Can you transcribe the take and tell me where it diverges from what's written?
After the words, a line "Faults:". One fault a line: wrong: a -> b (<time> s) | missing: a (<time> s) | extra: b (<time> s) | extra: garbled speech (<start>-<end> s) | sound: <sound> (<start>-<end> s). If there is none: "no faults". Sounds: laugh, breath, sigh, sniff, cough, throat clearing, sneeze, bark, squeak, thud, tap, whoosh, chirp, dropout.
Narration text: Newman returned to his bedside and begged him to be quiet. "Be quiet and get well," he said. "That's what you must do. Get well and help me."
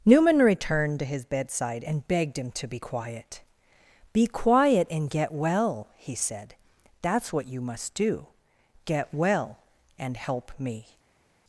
Newman returned to his bedside and begged him to be quiet. "Be quiet and get well," he said. "That's what you must do. Get well and help me."
Faults:
no faults